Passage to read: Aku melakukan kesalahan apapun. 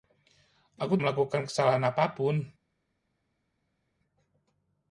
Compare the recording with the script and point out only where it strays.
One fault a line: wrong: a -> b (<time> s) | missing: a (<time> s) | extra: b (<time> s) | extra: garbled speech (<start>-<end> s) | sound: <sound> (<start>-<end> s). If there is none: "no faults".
no faults